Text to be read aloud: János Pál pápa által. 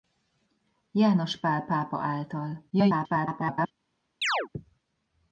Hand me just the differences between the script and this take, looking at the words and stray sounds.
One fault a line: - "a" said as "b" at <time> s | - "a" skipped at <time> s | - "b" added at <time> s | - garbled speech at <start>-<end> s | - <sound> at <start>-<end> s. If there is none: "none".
- garbled speech at 2.7-3.7 s
- chirp at 4.2-4.5 s